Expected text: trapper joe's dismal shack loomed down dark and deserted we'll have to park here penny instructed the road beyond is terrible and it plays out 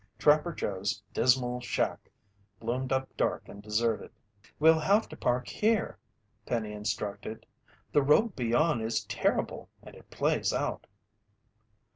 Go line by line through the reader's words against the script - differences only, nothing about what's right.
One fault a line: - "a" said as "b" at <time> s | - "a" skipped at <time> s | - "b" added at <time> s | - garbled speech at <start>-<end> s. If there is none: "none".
- "down" said as "up" at 2.9 s